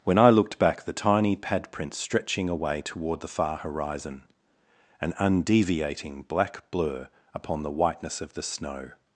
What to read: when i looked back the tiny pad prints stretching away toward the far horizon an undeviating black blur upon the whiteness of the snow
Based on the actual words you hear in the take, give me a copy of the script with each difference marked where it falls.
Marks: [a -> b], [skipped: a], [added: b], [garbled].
when i looked back the tiny pad prints stretching away toward the far horizon an undeviating black blur upon the whiteness of the snow